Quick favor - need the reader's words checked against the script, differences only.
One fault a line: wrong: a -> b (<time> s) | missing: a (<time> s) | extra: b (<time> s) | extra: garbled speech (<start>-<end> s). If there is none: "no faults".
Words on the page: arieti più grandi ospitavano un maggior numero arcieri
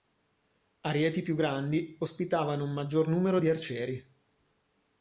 extra: di (3.4 s)